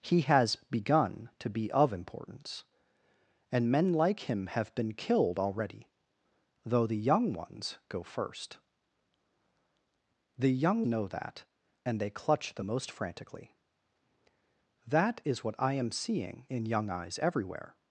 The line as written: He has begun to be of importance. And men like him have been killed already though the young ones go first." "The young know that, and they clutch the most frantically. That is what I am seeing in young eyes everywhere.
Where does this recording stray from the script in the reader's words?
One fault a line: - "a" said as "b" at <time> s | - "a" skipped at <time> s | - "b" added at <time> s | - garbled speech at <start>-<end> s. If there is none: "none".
none